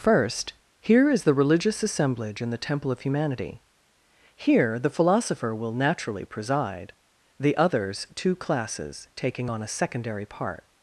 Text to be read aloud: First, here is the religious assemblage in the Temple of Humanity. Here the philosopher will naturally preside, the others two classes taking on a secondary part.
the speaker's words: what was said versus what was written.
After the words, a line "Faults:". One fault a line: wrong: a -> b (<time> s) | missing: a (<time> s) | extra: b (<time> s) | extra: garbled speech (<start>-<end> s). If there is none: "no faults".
First, here is the religious assemblage in the Temple of Humanity. Here the philosopher will naturally preside, the others two classes taking on a secondary part.
Faults:
no faults